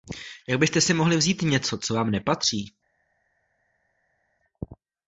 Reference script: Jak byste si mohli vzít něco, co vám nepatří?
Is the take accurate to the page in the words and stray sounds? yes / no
yes